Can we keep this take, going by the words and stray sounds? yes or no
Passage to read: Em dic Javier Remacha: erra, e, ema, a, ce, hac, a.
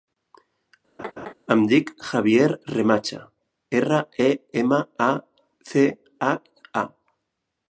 no